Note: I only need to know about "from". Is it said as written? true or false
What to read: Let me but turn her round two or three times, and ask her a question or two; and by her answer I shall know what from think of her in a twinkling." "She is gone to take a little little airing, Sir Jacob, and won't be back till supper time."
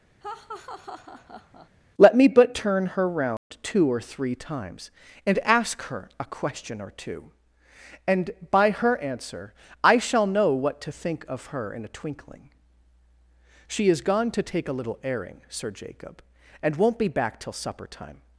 false